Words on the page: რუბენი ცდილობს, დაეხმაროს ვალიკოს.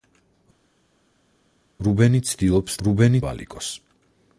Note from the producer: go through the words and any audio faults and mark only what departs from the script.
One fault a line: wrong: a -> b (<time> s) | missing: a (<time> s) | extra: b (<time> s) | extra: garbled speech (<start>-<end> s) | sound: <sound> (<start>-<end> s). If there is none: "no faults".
wrong: დაეხმაროს -> რუბენი (2.9 s)